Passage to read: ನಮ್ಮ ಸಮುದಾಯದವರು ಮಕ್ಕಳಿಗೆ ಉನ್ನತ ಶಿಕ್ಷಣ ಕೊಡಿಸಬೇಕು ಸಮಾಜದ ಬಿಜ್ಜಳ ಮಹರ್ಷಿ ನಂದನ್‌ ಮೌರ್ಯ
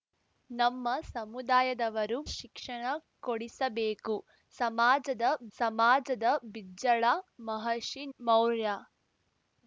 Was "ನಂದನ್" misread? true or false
true